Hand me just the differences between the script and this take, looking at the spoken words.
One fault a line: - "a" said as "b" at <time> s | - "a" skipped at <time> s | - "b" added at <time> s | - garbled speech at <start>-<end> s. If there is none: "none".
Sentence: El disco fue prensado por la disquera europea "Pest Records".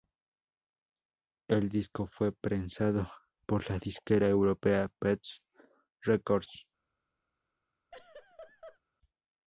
none